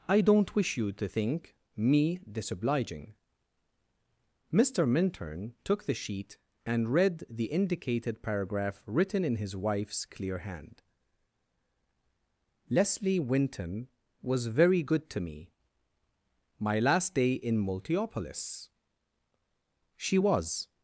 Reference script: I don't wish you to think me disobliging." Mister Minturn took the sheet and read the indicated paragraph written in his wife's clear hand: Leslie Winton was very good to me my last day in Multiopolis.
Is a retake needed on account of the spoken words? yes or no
yes